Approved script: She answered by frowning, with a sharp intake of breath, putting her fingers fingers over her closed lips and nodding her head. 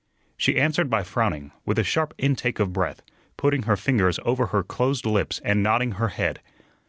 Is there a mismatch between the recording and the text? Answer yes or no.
yes